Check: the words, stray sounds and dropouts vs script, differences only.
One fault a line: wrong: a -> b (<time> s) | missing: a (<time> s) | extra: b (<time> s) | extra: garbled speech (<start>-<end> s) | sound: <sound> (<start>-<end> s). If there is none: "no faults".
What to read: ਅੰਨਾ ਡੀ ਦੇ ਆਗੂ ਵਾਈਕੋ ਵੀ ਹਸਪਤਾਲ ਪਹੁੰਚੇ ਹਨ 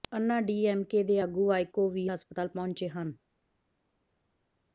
extra: ਐਮ ਕੇ (0.7 s)